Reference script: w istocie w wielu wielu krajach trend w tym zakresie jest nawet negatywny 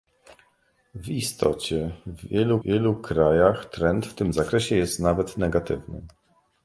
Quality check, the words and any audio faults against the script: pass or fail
pass